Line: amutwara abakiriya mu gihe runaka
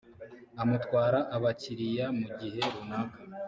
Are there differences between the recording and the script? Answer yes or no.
no